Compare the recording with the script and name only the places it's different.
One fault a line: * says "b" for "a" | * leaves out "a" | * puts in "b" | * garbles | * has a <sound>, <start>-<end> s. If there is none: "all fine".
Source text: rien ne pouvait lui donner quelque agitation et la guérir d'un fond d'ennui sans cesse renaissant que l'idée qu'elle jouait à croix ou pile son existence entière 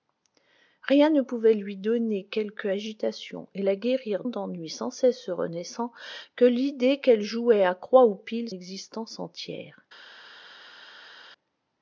* leaves out "d'un fond"
* leaves out "son"